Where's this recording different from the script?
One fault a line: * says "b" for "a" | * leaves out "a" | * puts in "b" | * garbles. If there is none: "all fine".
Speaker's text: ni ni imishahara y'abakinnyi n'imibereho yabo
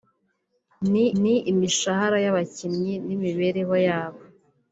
all fine